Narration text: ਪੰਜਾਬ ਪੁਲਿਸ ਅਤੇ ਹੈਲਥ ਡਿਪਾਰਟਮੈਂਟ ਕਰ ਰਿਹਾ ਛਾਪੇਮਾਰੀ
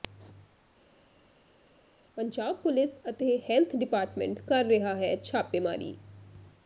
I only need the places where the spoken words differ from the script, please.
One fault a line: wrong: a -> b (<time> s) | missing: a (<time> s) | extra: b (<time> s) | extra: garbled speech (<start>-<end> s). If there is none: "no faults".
extra: ਹੈ (4.9 s)